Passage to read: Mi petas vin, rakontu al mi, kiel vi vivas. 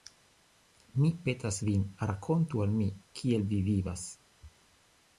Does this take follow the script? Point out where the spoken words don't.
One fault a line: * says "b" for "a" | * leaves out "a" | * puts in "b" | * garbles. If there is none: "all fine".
all fine